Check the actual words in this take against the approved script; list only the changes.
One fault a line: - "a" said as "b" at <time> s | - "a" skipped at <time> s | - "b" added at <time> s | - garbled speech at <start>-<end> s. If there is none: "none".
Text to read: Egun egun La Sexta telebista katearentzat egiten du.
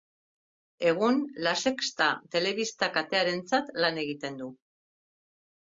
- "egun" skipped at 1.2 s
- "lan" added at 3.8 s